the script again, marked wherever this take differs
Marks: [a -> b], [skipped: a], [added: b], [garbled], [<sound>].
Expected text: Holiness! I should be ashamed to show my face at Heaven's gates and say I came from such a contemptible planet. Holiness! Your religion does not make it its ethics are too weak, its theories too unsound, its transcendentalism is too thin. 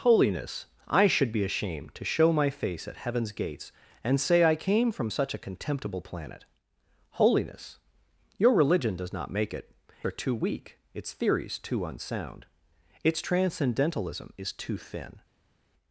Holiness! I should be ashamed to show my face at Heaven's gates and say I came from such a contemptible planet. Holiness! Your religion does not make it [skipped: its ethics] are too weak, its theories too unsound, its transcendentalism is too thin.